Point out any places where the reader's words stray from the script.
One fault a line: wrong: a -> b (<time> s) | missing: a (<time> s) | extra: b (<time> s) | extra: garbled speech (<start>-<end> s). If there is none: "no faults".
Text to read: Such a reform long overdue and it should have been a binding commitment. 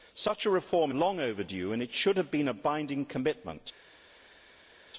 no faults